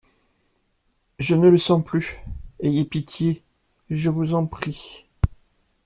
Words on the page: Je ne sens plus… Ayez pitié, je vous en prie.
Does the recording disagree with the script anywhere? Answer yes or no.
yes